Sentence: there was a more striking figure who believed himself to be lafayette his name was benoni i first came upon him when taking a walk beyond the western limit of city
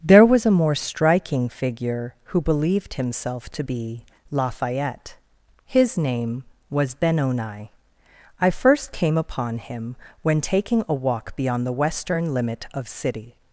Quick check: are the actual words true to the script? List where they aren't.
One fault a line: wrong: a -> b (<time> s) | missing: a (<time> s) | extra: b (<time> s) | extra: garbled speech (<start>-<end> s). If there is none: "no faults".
no faults